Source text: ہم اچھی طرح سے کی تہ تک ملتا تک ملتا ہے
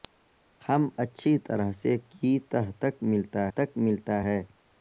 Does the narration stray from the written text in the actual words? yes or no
no